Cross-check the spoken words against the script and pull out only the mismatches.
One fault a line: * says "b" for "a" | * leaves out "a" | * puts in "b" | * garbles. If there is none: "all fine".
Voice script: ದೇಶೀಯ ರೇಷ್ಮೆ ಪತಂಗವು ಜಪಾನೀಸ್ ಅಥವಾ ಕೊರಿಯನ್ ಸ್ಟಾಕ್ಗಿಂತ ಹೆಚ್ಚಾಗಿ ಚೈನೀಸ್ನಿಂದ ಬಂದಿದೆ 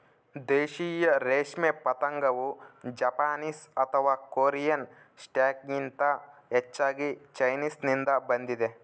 all fine